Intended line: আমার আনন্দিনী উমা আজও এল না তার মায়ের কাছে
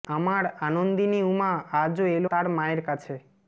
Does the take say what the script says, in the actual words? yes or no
no